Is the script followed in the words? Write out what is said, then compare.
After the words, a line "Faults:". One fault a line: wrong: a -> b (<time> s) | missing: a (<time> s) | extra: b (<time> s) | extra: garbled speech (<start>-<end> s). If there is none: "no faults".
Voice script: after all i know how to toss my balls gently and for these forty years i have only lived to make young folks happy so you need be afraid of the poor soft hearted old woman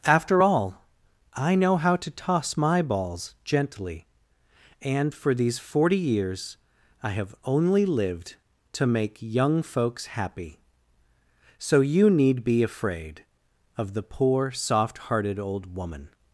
after all i know how to toss my balls gently and for these forty years i have only lived to make young folks happy so you need be afraid of the poor soft hearted old woman
Faults:
no faults